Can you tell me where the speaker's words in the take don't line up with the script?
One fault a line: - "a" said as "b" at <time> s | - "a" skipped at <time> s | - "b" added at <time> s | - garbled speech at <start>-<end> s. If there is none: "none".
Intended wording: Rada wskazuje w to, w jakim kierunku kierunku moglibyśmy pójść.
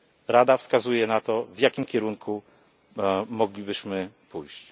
- "w" said as "na" at 1.1 s
- "kierunku" skipped at 2.4 s